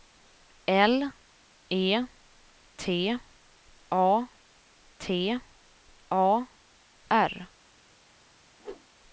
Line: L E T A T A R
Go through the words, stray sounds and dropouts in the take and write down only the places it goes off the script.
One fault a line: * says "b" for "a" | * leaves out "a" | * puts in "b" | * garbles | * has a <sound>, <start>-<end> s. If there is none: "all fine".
* has a whoosh, 8.6-8.9 s